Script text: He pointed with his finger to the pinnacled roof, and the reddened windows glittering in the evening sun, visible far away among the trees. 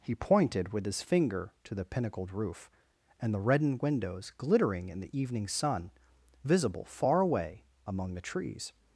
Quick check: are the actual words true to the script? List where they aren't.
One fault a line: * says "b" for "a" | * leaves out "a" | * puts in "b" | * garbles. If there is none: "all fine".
all fine